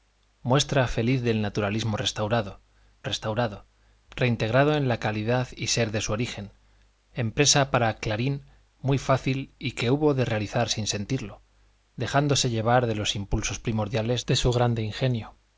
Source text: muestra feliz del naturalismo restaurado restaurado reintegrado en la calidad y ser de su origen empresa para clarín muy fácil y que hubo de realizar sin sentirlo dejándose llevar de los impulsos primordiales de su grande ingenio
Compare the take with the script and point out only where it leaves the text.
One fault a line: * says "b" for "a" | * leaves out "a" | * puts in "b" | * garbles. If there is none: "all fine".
all fine